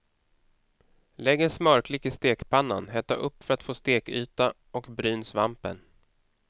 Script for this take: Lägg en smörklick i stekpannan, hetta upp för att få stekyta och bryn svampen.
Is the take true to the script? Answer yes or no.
yes